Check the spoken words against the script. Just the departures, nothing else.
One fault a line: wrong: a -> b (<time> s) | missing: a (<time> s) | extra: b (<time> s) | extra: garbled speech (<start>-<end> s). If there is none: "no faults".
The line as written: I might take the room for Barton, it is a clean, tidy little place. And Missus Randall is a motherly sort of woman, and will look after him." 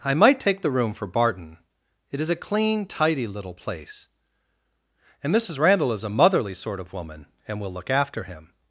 no faults